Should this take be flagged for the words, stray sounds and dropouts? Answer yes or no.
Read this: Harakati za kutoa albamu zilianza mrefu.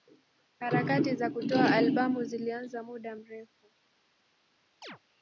yes